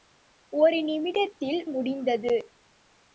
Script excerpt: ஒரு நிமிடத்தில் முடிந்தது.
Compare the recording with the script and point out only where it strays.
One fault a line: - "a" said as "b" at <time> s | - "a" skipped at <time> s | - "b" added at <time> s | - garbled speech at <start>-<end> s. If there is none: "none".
none